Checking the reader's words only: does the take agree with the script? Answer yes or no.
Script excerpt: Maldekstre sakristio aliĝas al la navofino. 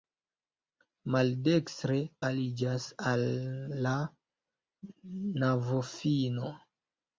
no